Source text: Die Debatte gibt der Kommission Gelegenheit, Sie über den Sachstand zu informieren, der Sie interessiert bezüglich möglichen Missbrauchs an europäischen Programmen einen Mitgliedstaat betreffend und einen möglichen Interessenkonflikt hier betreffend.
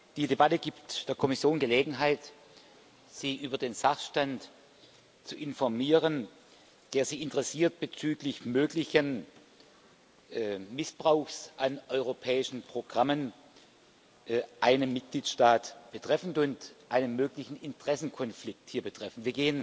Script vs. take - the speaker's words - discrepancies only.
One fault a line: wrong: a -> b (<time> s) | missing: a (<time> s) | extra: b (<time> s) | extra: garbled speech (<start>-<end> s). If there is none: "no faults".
no faults